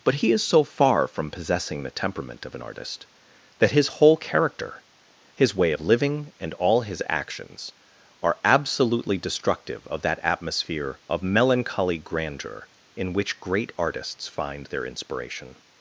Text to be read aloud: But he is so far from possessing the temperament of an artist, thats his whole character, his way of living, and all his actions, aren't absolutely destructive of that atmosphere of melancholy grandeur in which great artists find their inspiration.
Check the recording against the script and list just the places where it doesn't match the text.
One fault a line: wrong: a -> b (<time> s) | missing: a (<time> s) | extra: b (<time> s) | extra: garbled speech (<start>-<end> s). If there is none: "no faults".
wrong: thats -> that (3.6 s)
wrong: aren't -> are (8.2 s)